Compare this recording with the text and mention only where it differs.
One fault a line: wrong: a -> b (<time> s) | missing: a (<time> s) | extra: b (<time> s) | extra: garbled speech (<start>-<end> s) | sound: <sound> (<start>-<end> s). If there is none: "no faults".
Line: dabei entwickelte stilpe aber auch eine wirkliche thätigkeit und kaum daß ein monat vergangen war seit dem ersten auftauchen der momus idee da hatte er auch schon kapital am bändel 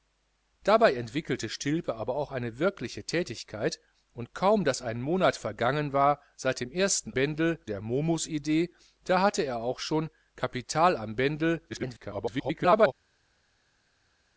wrong: auftauchen -> bändel (7.1 s)
extra: garbled speech (11.7-12.9 s)